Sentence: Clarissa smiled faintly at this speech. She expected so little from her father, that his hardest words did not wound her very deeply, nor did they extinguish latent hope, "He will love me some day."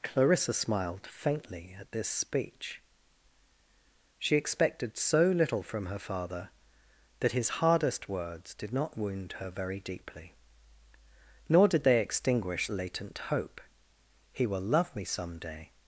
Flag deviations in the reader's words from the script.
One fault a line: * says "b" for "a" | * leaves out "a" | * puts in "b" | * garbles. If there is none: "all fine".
all fine